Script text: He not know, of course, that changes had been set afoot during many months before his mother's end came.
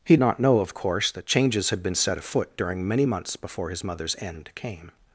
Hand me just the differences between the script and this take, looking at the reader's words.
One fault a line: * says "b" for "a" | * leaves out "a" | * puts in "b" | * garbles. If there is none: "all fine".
all fine